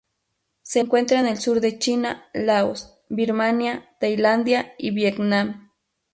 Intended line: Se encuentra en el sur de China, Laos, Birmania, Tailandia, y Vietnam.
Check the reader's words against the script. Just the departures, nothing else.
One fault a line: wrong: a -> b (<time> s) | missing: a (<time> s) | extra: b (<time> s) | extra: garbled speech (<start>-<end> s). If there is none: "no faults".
no faults